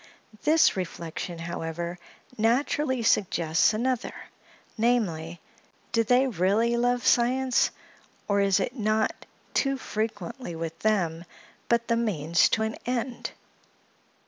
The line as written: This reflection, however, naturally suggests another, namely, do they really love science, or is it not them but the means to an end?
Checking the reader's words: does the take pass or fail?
fail